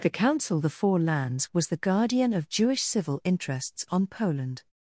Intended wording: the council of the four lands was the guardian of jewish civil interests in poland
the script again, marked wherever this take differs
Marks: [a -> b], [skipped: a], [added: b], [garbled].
the council [skipped: of] the four lands was the guardian of jewish civil interests [in -> on] poland